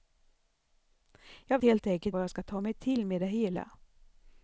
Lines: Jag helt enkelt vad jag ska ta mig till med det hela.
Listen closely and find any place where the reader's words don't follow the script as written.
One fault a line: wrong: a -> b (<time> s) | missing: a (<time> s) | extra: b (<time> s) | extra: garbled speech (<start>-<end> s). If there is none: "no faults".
no faults